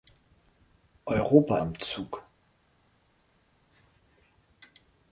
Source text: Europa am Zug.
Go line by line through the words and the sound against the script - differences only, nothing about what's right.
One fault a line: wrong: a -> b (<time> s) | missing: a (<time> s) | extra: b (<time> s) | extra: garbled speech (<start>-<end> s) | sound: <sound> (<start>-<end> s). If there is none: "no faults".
no faults